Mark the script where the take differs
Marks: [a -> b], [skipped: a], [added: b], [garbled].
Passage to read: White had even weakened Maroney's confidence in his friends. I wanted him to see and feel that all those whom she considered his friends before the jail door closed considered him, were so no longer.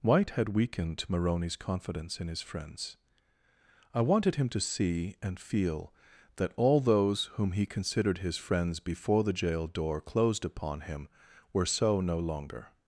White had [skipped: even] weakened Maroney's confidence in his friends. I wanted him to see and feel that all those whom [she -> he] considered his friends before the jail door closed [considered -> upon] him, were so no longer.